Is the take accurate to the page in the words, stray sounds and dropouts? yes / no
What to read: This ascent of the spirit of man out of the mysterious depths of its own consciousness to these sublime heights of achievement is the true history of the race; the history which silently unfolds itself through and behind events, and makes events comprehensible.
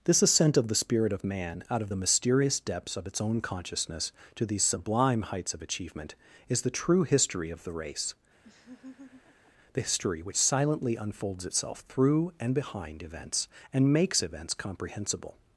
no